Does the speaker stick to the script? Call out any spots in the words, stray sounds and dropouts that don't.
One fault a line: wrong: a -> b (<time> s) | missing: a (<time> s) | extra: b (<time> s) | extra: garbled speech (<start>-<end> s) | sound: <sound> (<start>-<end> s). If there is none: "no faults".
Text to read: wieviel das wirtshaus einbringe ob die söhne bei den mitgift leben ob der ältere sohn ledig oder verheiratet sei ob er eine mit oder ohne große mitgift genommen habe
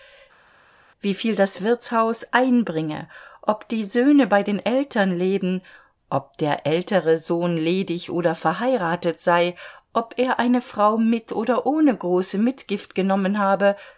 wrong: mitgift -> eltern (4.6 s)
extra: frau (10.6 s)